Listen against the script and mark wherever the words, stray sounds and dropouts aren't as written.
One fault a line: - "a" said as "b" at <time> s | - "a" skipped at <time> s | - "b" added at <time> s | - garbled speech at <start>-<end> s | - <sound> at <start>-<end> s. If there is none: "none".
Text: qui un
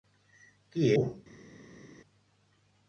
none